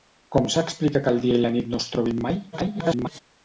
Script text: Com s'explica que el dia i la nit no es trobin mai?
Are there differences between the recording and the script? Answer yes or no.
yes